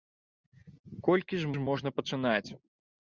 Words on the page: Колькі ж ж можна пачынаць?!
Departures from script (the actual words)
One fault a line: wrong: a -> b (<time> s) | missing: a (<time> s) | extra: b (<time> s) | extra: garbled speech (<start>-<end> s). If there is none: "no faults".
no faults